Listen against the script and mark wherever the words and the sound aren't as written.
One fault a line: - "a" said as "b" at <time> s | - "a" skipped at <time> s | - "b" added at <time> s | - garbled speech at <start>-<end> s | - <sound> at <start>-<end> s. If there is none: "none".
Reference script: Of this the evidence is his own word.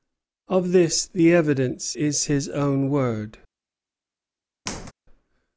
- squeak at 4.7-4.9 s